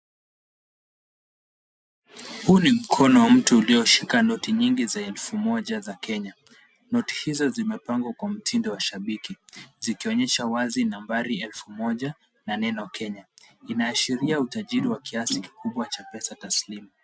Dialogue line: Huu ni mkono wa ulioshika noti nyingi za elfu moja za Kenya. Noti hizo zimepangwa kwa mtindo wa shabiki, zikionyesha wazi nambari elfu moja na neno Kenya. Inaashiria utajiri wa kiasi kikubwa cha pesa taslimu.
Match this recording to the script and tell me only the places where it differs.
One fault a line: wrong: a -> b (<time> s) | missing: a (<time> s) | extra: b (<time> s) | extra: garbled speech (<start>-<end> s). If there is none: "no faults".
extra: mtu (3.3 s)